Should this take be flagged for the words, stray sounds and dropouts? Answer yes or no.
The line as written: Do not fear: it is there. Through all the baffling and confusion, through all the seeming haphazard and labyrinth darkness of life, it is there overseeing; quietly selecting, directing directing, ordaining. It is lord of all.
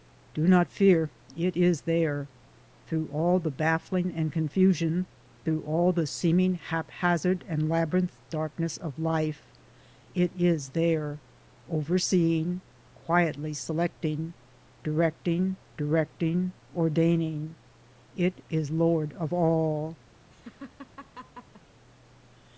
yes